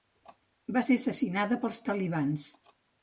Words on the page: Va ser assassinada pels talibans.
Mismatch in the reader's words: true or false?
false